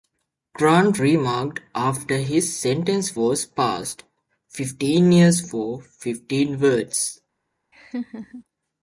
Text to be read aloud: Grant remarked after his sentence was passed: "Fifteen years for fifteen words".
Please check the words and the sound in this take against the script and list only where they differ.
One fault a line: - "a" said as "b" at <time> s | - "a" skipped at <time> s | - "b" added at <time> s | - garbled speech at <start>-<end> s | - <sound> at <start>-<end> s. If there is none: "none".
- laugh at 7.7-8.4 s